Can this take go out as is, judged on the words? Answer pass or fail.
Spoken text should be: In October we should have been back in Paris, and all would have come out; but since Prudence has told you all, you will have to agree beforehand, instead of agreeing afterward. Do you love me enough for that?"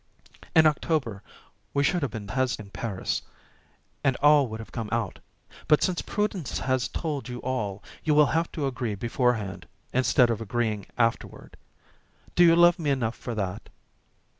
fail